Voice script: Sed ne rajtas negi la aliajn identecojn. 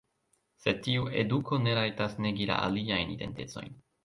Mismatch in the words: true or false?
true